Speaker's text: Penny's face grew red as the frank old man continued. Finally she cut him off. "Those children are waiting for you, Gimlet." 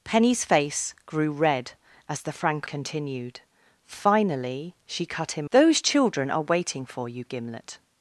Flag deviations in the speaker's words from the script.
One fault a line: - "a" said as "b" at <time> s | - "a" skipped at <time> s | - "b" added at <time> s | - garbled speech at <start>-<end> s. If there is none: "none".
- "old man" skipped at 2.7 s
- "off" skipped at 5.5 s